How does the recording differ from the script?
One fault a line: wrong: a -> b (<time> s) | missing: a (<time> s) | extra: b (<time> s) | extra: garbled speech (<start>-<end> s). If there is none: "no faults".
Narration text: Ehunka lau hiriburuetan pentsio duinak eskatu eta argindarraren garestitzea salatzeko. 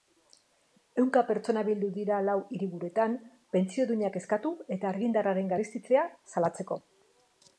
extra: pertsona bildu dira (1.3 s)